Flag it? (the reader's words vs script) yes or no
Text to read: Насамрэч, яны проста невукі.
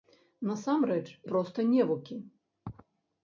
yes